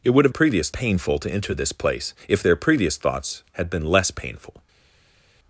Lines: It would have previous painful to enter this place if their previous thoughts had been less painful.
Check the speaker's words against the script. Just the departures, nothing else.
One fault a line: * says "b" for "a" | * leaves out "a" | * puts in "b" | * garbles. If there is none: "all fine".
all fine